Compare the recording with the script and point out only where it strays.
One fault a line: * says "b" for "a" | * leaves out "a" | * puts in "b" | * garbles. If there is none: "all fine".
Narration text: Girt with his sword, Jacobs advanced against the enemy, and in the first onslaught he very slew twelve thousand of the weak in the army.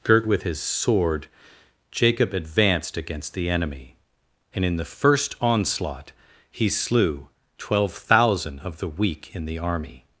* says "Jacob" for "Jacobs"
* leaves out "very"